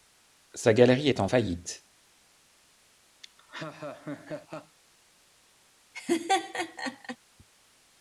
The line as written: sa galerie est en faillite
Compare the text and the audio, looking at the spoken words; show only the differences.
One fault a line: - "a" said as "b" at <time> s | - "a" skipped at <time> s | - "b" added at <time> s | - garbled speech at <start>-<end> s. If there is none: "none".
none